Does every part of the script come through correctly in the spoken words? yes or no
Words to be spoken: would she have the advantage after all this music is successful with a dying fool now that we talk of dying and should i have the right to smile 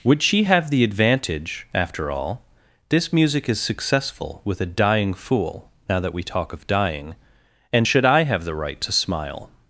yes